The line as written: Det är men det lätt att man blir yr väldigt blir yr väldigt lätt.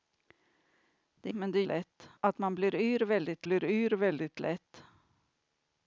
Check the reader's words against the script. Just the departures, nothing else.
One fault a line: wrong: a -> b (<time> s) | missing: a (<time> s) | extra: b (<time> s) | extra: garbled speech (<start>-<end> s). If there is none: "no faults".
no faults